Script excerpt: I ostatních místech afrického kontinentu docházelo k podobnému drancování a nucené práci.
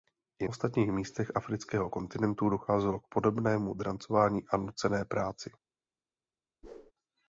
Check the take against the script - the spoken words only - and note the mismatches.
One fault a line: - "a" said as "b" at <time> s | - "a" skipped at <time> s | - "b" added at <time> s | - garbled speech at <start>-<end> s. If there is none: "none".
none